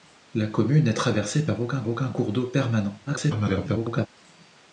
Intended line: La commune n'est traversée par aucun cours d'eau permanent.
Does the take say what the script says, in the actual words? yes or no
no